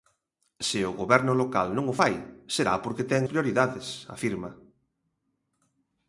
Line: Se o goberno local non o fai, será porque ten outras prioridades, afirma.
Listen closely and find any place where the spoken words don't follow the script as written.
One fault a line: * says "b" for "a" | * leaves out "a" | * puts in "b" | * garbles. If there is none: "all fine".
* leaves out "outras"